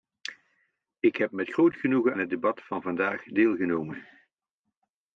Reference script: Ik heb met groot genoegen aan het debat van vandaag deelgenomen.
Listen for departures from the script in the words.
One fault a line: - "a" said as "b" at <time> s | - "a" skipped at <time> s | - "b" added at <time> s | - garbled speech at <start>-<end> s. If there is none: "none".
- "aan" skipped at 2.1 s